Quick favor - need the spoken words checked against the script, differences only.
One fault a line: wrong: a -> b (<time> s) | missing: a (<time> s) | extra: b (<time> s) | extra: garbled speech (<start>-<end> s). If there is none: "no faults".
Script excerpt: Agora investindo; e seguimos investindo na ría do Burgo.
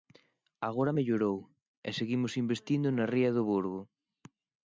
wrong: investindo -> mellorou (1.0 s)